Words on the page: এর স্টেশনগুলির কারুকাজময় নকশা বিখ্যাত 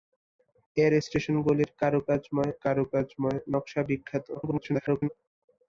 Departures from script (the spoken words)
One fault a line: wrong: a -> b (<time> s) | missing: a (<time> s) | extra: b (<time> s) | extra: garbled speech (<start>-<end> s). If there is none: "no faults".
extra: কারুকাজময় (2.6 s)
extra: garbled speech (4.4-5.1 s)